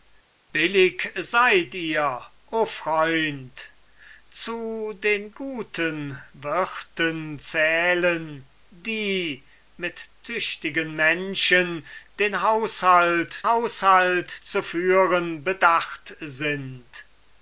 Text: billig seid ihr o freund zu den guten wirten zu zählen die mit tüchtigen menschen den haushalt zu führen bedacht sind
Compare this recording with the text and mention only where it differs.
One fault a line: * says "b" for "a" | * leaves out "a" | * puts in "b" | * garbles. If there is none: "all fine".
* leaves out "zu"
* puts in "haushalt"